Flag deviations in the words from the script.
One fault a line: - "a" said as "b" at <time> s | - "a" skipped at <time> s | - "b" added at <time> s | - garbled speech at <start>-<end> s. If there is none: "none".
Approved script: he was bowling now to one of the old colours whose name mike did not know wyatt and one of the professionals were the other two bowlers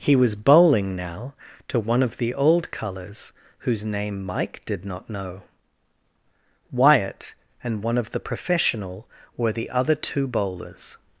- "professionals" said as "professional" at 8.2 s